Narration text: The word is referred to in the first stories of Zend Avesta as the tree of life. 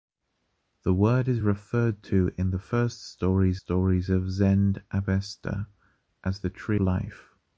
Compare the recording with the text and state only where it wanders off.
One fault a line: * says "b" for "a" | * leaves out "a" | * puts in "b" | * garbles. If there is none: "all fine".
* puts in "stories"
* leaves out "of"